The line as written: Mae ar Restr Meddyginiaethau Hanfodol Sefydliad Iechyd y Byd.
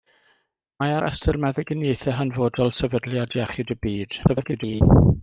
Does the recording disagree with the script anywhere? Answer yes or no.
yes